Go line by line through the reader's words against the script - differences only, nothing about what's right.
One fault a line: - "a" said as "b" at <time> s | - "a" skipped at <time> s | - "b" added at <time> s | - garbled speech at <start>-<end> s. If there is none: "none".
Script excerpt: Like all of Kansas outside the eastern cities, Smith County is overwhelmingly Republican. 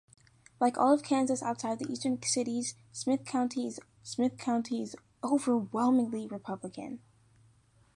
- "Smith County is" added at 4.0 s